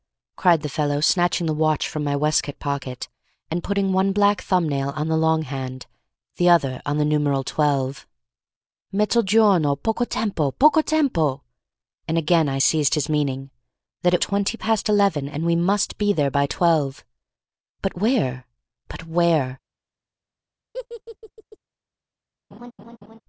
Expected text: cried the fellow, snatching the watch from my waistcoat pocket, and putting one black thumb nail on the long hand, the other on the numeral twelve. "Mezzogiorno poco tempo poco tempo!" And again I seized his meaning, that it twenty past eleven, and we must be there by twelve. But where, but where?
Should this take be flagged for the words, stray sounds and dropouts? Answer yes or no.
yes